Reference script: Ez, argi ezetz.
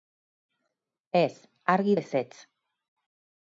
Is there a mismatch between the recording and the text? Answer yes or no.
no